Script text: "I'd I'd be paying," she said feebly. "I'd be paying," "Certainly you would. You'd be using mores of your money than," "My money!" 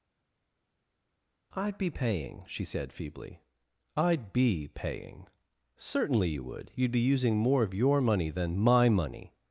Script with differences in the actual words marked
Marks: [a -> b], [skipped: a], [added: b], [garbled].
"I'd [skipped: I'd] be paying," she said feebly. "I'd be paying," "Certainly you would. You'd be using [mores -> more] of your money than," "My money!"